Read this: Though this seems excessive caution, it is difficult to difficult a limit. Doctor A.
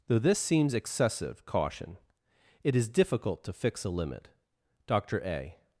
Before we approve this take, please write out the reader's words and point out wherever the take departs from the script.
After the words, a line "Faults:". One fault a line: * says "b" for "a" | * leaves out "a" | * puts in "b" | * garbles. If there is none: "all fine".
Though this seems excessive caution, it is difficult to fix a limit. Doctor A.
Faults:
* says "fix" for "difficult"